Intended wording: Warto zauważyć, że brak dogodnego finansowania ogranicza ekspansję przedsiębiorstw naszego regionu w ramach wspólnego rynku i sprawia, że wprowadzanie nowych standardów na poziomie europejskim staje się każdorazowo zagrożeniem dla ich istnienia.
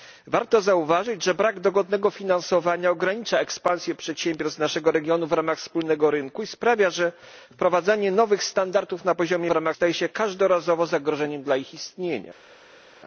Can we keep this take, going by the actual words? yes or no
no